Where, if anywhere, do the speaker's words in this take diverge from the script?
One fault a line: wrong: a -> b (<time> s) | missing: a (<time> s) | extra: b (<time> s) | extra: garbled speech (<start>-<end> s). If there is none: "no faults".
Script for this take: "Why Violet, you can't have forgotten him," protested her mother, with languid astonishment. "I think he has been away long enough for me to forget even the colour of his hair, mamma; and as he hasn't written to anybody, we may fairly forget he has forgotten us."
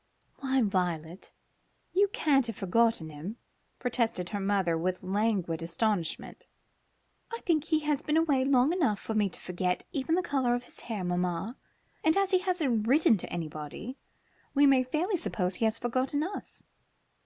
wrong: forget -> suppose (15.2 s)